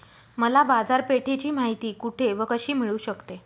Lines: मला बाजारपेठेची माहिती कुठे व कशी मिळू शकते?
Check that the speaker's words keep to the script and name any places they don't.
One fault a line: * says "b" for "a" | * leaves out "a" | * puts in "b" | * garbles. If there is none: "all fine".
all fine